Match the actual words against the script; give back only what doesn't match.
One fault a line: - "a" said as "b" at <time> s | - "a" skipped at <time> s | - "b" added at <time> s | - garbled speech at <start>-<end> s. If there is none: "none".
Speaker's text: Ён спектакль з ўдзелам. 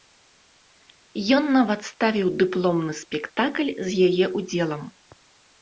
- "нават ставіў дыпломны" added at 1.6 s
- "яе" added at 4.1 s